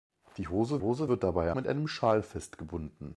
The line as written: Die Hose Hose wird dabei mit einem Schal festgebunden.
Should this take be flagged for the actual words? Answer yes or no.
no